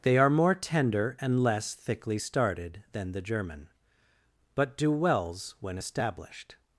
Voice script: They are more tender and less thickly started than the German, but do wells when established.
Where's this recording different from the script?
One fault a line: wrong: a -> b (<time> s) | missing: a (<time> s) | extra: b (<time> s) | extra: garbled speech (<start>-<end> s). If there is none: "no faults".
no faults